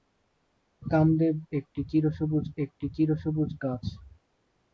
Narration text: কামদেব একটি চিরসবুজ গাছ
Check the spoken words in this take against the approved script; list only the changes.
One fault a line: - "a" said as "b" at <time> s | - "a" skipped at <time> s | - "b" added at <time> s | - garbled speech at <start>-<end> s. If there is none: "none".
- "একটি চিরসবুজ" added at 2.6 s